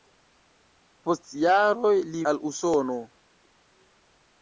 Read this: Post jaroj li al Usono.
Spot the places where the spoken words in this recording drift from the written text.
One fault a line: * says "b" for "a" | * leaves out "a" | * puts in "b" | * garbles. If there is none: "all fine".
all fine